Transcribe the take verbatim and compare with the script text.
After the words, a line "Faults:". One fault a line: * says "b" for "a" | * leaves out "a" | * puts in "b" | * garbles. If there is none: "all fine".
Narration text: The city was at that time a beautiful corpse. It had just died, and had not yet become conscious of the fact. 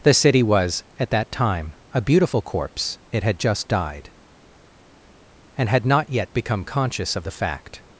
The city was at that time a beautiful corpse. It had just died, and had not yet become conscious of the fact.
Faults:
all fine